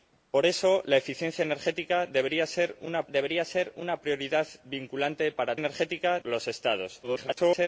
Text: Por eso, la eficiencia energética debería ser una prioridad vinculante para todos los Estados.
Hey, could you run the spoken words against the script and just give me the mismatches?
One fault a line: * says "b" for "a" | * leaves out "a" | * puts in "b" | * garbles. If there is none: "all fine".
* puts in "debería ser una"
* says "energética" for "todos"
* garbles